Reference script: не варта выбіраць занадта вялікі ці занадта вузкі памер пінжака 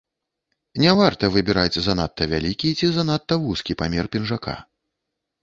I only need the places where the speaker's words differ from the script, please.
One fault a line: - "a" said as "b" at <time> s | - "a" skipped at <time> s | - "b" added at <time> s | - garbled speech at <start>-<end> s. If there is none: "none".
none